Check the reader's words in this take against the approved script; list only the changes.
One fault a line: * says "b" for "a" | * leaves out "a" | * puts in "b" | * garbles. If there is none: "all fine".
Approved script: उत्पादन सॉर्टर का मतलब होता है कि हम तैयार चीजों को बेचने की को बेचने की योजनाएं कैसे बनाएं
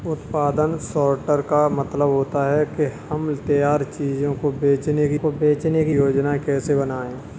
all fine